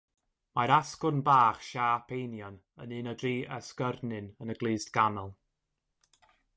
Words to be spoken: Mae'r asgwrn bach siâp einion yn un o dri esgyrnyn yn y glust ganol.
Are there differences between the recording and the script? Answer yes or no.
no